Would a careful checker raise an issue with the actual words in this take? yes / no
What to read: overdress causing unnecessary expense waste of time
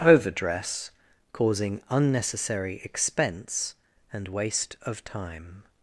yes